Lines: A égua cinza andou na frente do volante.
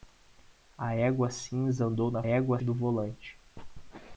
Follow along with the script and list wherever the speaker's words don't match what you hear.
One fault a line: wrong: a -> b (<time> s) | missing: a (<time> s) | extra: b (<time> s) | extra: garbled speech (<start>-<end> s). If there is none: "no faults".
wrong: frente -> égua (2.2 s)